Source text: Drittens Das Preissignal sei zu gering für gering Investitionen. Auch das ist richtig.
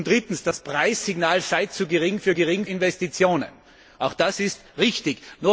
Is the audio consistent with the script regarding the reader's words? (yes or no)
yes